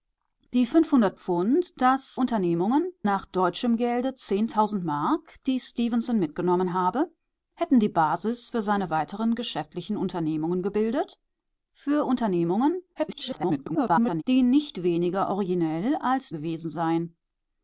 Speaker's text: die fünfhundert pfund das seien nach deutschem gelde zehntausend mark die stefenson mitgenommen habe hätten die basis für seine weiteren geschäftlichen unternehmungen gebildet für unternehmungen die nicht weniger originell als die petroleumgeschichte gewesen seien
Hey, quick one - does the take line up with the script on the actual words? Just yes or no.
no